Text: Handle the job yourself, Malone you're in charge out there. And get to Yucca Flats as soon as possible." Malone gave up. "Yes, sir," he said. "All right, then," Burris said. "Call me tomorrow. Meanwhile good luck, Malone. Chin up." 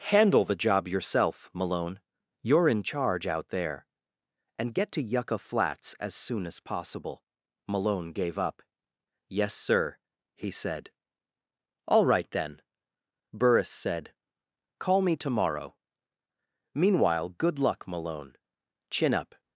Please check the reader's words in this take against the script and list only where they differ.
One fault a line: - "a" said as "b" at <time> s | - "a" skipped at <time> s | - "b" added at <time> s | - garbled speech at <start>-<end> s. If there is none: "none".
none